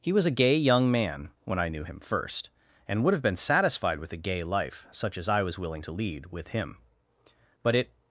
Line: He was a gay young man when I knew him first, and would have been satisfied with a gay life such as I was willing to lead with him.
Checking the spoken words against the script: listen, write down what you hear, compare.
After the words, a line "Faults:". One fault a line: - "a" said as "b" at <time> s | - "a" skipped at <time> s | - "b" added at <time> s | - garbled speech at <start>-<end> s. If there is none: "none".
He was a gay young man when I knew him first, and would have been satisfied with a gay life such as I was willing to lead with him. But it
Faults:
- "But it" added at 7.6 s